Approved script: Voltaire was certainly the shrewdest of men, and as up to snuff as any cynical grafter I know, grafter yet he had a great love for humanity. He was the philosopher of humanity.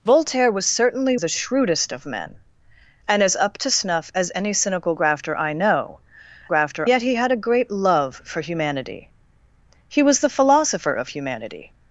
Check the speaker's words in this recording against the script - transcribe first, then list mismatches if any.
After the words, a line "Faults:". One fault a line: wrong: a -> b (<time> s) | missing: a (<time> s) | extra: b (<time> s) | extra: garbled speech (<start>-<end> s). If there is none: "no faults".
Voltaire was certainly the shrewdest of men, and as up to snuff as any cynical grafter I know, grafter yet he had a great love for humanity. He was the philosopher of humanity.
Faults:
no faults